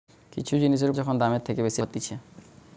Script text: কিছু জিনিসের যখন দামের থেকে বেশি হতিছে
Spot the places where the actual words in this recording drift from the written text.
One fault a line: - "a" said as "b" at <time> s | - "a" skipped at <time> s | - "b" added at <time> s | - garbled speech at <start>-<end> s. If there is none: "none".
none